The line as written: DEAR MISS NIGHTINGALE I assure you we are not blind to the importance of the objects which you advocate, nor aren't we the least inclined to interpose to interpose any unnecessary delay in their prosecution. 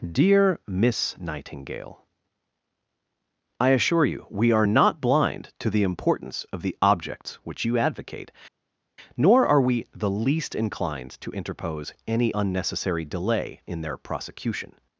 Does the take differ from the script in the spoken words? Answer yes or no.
yes